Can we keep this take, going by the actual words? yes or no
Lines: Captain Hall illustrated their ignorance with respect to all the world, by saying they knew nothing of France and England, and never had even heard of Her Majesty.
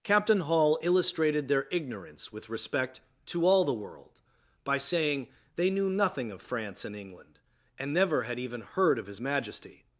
no